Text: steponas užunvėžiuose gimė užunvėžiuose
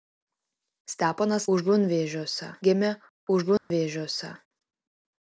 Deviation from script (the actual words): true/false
false